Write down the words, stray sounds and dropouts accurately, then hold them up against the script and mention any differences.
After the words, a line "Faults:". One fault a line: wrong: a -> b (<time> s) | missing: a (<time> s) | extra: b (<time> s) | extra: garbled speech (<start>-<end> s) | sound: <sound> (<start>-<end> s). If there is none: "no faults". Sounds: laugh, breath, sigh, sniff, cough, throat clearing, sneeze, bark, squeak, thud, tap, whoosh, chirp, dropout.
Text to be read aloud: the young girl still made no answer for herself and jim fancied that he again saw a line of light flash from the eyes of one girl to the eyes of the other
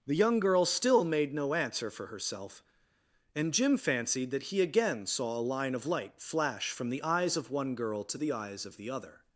the young girl still made no answer for herself and jim fancied that he again saw a line of light flash from the eyes of one girl to the eyes of the other
Faults:
no faults